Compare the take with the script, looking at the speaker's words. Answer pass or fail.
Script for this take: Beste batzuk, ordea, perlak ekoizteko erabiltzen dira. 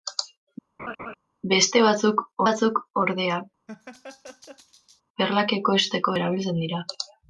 fail